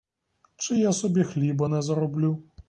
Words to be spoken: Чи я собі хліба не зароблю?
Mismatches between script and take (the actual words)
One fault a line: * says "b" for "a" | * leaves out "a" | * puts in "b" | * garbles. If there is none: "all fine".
all fine